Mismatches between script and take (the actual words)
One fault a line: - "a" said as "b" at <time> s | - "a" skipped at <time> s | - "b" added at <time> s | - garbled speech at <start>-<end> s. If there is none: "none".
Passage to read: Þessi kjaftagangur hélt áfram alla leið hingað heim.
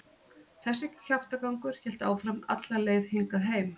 none